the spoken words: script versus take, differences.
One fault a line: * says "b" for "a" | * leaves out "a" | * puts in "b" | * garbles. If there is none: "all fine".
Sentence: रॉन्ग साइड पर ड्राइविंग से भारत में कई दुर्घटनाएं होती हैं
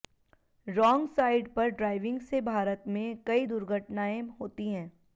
all fine